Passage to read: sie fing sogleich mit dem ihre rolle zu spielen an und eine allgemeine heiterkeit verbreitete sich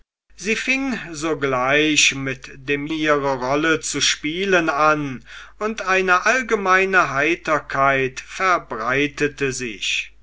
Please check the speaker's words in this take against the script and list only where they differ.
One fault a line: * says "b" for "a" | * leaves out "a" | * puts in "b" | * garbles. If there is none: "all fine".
all fine